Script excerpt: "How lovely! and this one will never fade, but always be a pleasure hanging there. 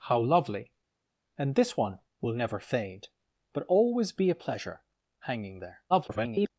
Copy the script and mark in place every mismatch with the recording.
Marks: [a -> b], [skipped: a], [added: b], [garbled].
"How lovely! and this one will never fade, but always be a pleasure hanging there. [garbled]